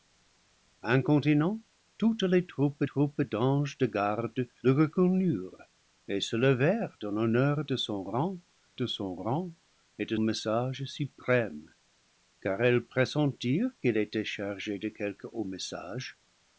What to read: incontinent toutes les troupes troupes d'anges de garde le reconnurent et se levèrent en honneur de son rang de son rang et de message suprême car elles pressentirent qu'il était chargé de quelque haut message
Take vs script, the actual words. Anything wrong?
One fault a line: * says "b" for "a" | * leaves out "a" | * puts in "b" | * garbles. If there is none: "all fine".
all fine